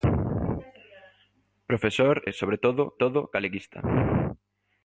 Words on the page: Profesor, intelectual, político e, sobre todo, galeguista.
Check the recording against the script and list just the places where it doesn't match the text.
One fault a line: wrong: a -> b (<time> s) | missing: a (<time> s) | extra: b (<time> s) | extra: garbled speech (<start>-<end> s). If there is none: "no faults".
missing: intelectual político (2.2 s)
extra: todo (2.9 s)